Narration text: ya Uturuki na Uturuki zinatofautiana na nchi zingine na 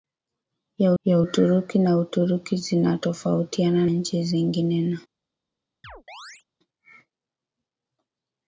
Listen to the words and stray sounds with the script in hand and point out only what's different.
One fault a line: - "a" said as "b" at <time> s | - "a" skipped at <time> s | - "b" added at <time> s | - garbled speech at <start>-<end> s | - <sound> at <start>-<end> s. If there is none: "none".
- "ya" added at 1.0 s
- "na" skipped at 3.9 s
- chirp at 5.8-6.4 s